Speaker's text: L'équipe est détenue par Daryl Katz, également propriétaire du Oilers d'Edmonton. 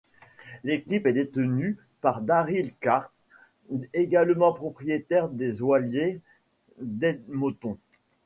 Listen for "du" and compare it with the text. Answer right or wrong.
wrong